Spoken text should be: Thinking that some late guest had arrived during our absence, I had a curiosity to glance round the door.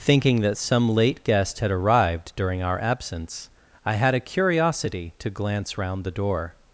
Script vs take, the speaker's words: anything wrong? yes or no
no